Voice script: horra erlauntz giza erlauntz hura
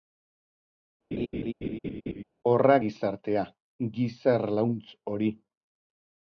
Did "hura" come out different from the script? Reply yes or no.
yes